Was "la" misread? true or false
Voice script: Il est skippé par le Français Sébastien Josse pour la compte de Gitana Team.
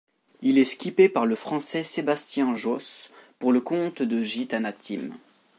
true